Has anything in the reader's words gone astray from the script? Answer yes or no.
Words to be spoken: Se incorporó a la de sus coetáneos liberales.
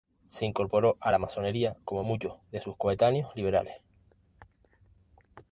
yes